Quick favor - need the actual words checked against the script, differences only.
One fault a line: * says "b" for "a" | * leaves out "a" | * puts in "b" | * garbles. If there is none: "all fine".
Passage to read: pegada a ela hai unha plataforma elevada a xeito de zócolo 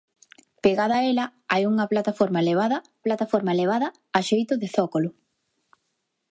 * puts in "plataforma elevada"